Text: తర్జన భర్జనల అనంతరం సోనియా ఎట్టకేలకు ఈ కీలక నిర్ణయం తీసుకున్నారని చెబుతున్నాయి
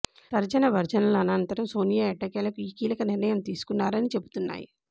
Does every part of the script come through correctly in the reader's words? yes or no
yes